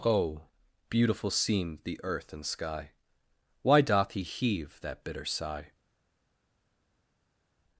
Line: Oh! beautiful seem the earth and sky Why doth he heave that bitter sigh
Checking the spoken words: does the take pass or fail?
pass